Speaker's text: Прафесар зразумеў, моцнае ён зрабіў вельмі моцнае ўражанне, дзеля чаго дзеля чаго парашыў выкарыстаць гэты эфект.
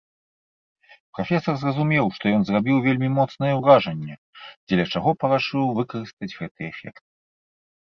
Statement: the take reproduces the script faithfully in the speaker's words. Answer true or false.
false